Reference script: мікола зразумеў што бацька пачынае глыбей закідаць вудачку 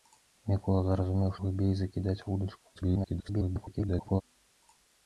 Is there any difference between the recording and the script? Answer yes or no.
yes